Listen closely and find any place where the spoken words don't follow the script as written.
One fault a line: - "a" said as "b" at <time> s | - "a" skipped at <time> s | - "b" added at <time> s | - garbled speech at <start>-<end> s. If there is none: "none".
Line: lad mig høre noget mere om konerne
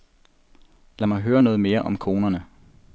none